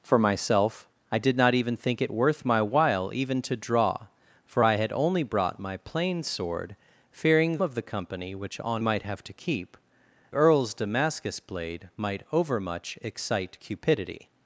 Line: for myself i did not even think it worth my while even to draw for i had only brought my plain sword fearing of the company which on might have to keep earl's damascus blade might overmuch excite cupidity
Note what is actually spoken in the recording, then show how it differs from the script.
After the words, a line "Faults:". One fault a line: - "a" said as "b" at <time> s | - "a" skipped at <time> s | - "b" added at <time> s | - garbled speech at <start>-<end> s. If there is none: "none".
for myself i did not even think it worth my while even to draw for i had only brought my plain sword fearing of the company which on might have to keep earl's damascus blade might overmuch excite cupidity
Faults:
none